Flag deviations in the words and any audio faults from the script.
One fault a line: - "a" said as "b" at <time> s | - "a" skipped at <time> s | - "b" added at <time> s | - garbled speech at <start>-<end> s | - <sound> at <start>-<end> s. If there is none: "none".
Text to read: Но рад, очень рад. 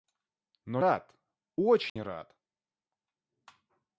- dropout at 1.9-2.0 s